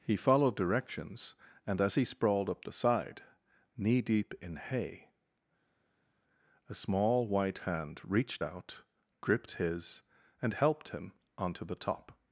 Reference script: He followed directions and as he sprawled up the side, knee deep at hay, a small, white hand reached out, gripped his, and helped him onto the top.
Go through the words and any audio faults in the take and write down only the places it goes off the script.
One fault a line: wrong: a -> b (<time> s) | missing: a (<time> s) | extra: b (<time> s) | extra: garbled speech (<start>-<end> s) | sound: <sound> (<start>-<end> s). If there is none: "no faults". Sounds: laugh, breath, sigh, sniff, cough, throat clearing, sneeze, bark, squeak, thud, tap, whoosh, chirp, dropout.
wrong: at -> in (4.4 s)